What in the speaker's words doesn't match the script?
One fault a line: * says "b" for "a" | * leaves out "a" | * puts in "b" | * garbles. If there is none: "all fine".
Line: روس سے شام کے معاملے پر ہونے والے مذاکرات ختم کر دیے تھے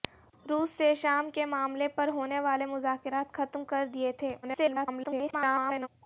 * garbles